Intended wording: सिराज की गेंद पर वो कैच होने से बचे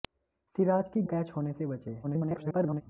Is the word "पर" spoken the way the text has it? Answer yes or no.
no